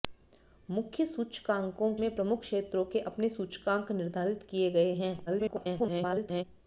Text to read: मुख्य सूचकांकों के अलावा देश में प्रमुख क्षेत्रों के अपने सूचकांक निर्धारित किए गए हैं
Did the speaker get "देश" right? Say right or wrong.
wrong